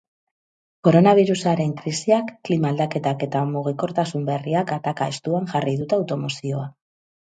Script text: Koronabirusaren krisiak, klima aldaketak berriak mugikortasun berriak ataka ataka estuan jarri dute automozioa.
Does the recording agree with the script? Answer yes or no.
no